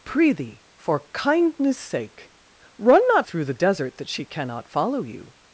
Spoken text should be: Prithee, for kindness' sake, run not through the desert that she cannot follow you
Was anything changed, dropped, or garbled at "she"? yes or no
no